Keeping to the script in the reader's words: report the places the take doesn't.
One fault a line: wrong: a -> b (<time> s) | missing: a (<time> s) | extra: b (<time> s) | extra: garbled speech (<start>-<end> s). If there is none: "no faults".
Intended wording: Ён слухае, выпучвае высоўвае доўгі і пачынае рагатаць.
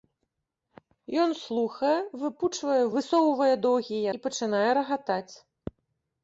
no faults